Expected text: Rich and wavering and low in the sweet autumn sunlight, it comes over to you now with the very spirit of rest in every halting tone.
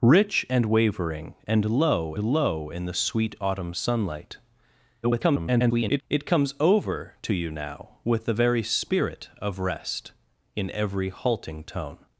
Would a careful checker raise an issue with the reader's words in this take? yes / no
yes